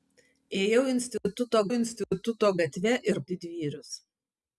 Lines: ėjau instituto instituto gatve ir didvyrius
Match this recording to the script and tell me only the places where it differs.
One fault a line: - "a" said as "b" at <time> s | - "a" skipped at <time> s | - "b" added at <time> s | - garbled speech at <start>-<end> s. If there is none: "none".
none